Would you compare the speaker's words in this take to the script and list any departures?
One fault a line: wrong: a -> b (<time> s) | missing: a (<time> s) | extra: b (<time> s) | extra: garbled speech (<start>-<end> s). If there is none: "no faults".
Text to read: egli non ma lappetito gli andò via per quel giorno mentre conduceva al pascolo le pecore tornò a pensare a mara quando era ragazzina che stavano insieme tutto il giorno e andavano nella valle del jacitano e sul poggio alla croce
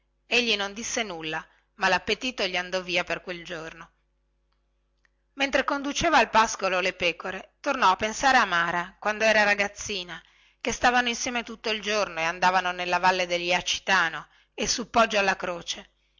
extra: disse nulla (0.7 s)